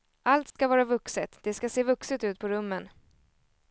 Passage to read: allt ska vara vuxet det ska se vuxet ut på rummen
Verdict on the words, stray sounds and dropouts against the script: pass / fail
fail